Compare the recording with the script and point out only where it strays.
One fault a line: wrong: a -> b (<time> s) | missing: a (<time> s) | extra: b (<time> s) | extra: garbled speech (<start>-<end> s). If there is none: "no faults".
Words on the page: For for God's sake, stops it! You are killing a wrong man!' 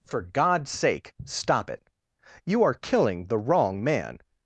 missing: for (0.2 s)
wrong: stops -> stop (1.2 s)
wrong: a -> the (3.2 s)